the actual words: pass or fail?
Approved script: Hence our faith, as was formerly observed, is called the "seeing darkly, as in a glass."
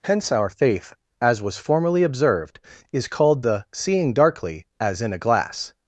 pass